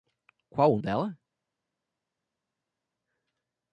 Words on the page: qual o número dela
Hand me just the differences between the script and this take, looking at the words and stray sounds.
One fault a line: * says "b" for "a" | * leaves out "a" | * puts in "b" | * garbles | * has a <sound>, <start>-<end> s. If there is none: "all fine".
* leaves out "número"